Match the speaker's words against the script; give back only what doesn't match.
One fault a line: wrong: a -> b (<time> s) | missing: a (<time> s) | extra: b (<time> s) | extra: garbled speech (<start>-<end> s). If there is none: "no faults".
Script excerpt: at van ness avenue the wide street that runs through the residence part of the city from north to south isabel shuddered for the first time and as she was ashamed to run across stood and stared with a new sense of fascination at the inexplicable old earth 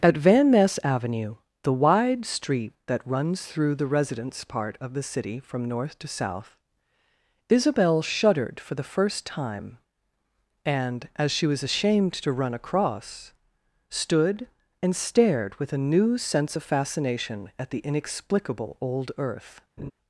no faults